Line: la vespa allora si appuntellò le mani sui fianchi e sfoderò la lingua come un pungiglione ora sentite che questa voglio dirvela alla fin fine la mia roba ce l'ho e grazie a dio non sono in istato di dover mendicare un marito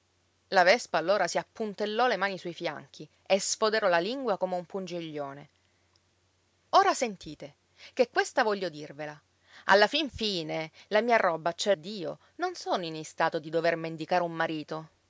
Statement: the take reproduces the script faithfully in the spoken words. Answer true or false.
false